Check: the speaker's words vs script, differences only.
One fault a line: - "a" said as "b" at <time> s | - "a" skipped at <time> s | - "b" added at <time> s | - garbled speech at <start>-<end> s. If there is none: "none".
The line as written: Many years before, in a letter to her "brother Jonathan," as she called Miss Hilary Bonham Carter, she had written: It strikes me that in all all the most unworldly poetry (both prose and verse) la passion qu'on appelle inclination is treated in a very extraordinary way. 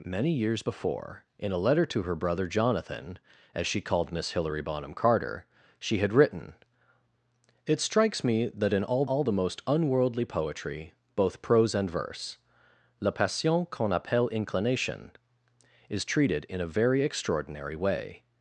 none